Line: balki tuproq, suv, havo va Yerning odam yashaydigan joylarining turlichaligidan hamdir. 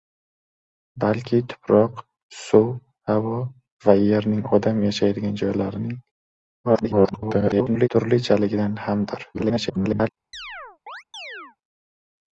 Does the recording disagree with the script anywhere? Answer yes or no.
yes